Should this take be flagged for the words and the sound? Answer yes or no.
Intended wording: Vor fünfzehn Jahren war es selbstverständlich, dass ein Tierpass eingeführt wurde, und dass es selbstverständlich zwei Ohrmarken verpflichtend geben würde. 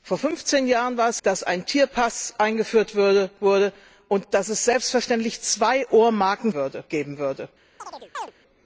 yes